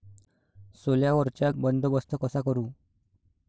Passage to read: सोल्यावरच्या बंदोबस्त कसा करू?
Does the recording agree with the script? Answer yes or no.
yes